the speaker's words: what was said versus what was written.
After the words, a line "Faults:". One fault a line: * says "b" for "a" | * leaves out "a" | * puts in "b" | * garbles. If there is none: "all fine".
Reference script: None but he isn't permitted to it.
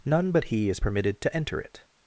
None but he is permitted to enter it.
Faults:
* says "is" for "isn't"
* puts in "enter"